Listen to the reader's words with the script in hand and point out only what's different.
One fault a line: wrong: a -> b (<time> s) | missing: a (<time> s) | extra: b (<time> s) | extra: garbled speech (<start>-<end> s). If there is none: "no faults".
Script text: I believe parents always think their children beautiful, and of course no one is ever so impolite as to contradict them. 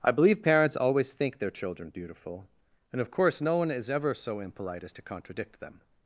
no faults